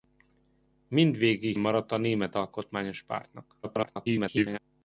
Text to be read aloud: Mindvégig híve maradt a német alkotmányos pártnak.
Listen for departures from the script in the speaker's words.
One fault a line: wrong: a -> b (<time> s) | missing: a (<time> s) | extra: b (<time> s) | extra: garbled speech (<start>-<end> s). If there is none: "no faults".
missing: híve (1.6 s)
extra: garbled speech (3.6-4.6 s)